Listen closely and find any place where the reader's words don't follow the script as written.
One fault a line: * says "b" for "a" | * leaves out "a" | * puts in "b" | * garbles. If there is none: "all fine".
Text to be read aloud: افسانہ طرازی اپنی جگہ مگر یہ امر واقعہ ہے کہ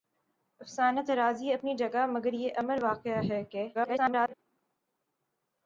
* garbles